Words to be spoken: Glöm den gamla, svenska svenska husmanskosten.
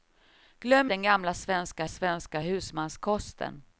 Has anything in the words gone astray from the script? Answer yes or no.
no